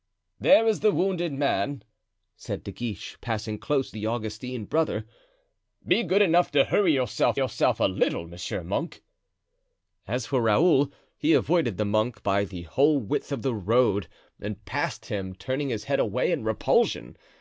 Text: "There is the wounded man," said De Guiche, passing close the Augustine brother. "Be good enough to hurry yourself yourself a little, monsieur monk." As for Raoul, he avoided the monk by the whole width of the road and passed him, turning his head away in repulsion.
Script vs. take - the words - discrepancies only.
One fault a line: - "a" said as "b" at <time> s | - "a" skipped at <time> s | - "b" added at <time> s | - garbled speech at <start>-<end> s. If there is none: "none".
none